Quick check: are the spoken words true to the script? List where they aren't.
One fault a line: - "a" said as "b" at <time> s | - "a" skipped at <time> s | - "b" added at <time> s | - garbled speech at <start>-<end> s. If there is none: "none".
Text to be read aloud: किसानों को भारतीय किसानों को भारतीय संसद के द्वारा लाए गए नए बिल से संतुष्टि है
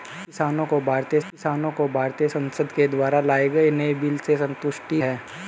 none